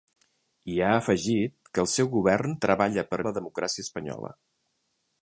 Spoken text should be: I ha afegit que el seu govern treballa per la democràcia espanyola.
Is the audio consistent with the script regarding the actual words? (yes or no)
yes